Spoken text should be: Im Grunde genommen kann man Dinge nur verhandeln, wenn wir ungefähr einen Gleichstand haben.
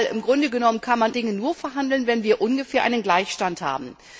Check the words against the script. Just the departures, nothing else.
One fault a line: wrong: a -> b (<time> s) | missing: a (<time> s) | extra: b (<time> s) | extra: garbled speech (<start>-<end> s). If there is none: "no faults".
no faults